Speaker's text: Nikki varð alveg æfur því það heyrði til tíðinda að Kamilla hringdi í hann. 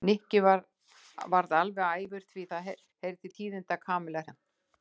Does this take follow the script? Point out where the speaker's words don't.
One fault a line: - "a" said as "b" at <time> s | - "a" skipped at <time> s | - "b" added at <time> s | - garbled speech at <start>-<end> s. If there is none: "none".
- "hringdi" skipped at 4.2 s